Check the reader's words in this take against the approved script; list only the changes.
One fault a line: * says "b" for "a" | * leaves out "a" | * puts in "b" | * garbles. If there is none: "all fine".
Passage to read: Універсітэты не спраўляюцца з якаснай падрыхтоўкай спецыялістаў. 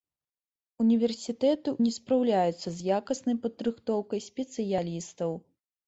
all fine